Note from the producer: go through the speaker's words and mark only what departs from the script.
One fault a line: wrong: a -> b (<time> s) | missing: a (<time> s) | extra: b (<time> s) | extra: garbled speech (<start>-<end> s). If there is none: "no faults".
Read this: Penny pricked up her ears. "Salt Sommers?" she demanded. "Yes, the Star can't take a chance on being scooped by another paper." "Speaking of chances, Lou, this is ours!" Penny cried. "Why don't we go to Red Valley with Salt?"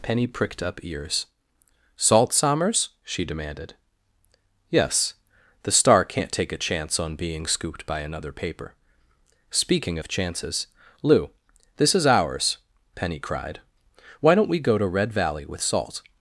missing: her (0.8 s)